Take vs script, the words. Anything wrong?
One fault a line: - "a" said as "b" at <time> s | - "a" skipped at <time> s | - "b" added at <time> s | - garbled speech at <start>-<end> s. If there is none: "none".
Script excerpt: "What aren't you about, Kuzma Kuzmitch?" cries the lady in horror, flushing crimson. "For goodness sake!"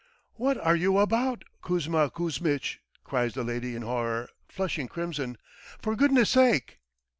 - "aren't" said as "are" at 0.6 s